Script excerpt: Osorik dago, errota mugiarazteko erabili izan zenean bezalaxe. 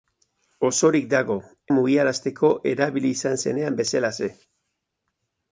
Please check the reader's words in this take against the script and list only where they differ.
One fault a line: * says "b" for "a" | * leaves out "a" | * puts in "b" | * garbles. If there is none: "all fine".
* leaves out "errota"